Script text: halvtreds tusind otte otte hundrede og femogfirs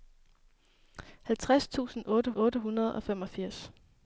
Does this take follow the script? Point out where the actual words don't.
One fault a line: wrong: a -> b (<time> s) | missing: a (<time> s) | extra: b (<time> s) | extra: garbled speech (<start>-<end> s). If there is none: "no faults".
no faults